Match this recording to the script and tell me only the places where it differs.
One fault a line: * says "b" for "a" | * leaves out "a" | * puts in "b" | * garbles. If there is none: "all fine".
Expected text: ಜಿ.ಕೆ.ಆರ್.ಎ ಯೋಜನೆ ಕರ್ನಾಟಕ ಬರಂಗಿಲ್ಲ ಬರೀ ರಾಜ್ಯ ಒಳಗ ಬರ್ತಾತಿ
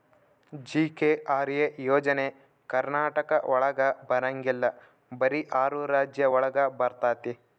* puts in "ಒಳಗ"
* puts in "ಆರು"